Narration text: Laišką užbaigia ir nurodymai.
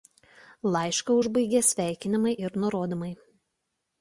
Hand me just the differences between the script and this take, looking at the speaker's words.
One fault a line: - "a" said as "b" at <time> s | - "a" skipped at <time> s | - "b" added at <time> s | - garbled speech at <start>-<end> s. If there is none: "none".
- "sveikinimai" added at 1.7 s